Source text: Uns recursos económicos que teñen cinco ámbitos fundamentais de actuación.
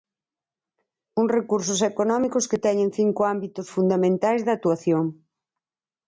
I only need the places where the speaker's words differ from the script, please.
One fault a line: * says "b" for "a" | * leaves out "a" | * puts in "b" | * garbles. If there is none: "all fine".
all fine